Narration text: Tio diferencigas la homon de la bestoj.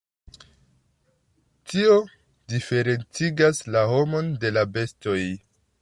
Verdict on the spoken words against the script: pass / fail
pass